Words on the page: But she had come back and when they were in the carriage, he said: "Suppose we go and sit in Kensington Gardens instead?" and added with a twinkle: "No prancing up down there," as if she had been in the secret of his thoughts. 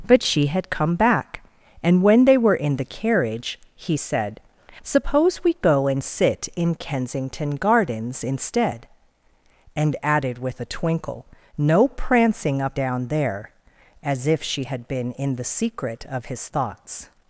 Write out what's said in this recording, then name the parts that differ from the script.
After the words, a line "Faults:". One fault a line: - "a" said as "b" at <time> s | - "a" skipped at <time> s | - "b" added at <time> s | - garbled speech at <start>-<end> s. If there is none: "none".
But she had come back and when they were in the carriage, he said: "Suppose we go and sit in Kensington Gardens instead?" and added with a twinkle: "No prancing up down there," as if she had been in the secret of his thoughts.
Faults:
none